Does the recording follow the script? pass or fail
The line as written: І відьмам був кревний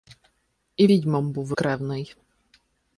pass